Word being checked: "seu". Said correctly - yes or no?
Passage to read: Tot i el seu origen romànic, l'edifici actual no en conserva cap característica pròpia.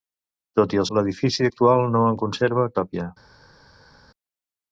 no